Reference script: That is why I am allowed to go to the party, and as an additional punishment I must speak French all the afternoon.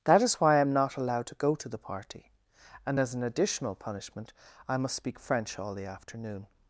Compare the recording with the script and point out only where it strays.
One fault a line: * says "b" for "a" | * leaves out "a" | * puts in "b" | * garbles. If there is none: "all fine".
* puts in "not"